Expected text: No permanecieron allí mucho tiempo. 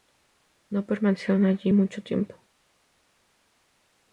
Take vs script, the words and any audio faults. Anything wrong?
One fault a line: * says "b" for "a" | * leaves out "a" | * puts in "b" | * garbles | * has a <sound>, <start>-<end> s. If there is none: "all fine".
all fine